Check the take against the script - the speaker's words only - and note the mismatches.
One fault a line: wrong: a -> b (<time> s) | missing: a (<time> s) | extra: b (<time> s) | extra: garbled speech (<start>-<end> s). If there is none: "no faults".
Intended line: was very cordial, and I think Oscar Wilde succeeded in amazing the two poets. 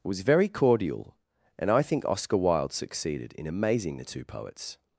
no faults